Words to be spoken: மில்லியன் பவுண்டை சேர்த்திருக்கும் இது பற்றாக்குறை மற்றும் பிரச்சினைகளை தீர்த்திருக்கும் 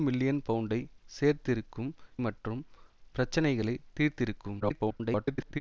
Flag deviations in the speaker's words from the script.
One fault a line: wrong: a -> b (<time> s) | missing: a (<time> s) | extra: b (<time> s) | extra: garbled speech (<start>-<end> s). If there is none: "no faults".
missing: இது பற்றாக்குறை (1.9 s)
extra: garbled speech (4.6-5.6 s)